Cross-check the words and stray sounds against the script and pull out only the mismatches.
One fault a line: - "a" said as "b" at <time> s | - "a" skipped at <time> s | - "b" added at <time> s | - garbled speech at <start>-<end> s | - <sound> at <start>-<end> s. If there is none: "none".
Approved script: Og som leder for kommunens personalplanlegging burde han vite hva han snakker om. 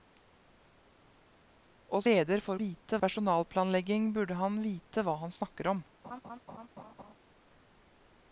- "som" skipped at 2.0 s
- "kommunens" said as "vite" at 2.6 s
- laugh at 6.0-7.1 s